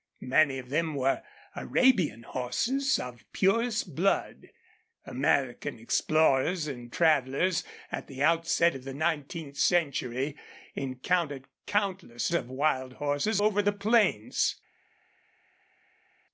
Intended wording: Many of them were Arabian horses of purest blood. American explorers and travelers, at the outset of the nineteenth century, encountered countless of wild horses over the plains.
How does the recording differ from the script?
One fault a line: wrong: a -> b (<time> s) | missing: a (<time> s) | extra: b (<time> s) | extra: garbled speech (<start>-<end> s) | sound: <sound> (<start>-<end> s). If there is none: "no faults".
no faults